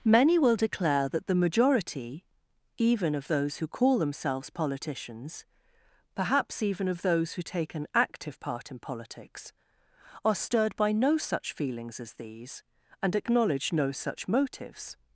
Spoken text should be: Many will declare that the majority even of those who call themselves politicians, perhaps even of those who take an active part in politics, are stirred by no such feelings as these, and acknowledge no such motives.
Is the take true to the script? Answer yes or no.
yes